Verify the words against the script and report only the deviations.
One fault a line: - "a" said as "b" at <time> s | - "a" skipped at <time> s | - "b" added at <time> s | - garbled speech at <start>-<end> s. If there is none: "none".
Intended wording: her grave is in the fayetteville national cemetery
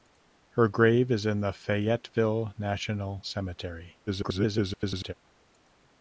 - garbled speech at 4.1-5.1 s